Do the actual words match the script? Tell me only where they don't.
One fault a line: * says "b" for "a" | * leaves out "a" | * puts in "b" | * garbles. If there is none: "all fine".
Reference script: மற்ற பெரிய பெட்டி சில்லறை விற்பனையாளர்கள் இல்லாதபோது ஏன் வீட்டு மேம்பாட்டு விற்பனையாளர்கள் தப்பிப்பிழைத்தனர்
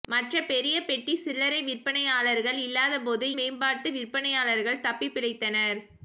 * leaves out "ஏன் வீட்டு"